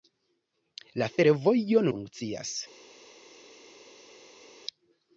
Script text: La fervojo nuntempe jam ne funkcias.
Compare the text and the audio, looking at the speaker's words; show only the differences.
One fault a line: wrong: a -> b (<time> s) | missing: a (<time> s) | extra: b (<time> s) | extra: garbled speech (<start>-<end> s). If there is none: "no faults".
missing: nuntempe jam ne (1.9 s)